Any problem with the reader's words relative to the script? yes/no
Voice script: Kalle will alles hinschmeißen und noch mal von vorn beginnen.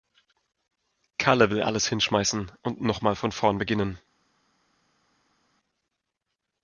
no